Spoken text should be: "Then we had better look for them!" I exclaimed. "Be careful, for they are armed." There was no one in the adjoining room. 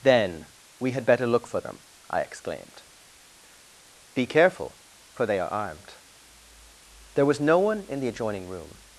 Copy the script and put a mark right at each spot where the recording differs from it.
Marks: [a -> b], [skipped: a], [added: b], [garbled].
"Then we had better look for them!" I exclaimed. "Be careful, for they are armed." There was no one in the adjoining room.